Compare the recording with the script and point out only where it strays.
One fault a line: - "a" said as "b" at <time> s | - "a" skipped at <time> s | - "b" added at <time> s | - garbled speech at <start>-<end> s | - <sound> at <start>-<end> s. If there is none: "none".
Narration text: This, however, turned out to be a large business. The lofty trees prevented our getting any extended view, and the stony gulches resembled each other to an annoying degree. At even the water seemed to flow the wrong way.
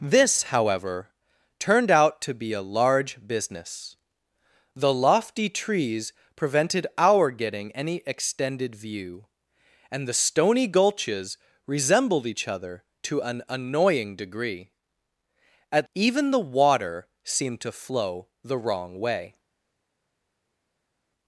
none